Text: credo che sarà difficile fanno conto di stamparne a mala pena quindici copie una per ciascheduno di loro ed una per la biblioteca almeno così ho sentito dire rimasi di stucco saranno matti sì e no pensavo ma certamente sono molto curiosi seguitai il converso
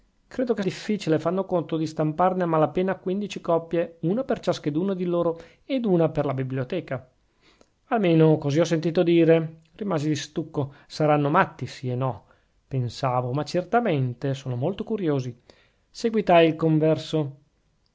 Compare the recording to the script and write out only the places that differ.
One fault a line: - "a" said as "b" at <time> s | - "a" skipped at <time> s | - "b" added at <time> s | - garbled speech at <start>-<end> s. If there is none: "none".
- "sarà" skipped at 0.6 s